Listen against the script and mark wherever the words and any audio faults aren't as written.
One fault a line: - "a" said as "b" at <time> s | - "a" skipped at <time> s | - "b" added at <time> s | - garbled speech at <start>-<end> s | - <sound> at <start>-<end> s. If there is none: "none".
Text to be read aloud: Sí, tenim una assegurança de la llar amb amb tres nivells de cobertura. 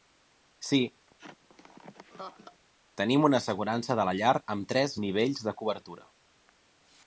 - laugh at 1.1-2.6 s
- "amb" skipped at 4.7 s